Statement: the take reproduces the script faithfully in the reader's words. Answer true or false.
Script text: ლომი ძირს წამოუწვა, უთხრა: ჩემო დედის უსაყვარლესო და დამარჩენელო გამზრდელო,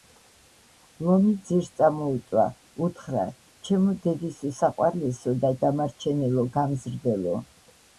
true